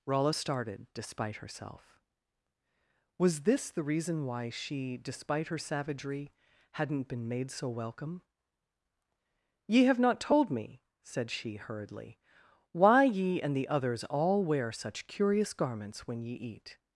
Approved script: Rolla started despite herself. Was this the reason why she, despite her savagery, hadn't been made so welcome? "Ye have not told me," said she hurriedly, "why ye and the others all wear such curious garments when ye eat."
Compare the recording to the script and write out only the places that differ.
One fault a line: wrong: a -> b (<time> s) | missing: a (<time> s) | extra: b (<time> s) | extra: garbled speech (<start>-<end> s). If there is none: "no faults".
no faults